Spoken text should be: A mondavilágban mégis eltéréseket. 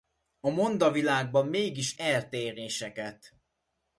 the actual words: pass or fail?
pass